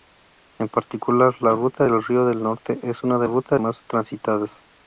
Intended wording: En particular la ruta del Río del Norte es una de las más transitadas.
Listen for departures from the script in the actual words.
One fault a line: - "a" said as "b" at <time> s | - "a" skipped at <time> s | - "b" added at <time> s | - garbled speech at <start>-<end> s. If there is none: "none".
- "las" said as "ruta" at 3.2 s